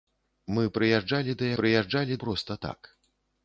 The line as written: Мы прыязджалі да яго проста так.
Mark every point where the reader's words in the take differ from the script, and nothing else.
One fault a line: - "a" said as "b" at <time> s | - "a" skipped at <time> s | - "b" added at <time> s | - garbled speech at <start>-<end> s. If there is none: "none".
- "яго" said as "прыязджалі" at 1.6 s